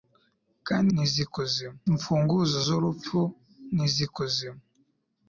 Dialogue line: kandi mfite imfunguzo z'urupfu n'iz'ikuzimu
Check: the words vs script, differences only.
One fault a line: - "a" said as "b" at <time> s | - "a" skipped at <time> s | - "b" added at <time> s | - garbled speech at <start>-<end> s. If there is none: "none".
- "mfite" said as "n'iz'ikuzimu" at 0.9 s